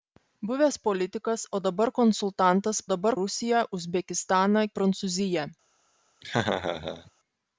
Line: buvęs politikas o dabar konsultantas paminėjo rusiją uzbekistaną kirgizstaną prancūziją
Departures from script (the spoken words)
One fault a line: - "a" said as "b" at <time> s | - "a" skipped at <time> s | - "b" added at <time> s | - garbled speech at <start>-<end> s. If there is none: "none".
- "paminėjo" said as "dabar" at 2.9 s
- "kirgizstaną" skipped at 4.7 s